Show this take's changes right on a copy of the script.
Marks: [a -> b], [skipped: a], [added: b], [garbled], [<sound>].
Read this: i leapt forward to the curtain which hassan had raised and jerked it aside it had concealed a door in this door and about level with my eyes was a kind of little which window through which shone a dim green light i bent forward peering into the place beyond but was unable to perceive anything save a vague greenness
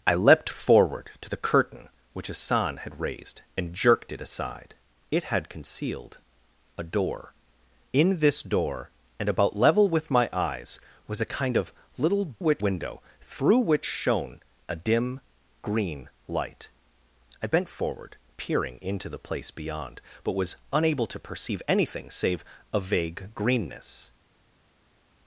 i leapt forward to the curtain which hassan had raised and jerked it aside it had concealed a door in this door and about level with my eyes was a kind of little which window through which shone a dim green light i bent forward peering into the place beyond but was unable to perceive anything save a vague greenness